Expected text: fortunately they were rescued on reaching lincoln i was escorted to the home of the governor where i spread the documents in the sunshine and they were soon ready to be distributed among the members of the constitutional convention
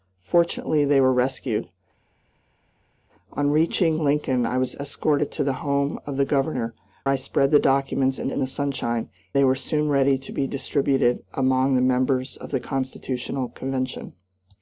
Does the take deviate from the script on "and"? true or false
true